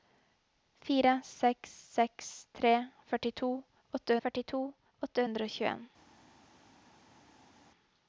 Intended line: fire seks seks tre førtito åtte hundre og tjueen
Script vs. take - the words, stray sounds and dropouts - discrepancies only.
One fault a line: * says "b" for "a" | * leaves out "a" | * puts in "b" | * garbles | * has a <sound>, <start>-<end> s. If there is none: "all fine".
* puts in "førtito åtte"